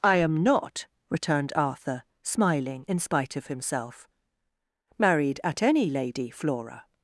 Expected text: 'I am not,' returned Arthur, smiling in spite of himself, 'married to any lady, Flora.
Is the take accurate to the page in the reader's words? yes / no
no